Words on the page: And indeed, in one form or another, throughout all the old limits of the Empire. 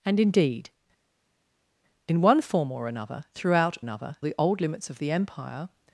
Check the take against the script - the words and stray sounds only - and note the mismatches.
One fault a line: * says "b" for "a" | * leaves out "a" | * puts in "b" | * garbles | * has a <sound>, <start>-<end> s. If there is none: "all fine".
* says "another" for "all"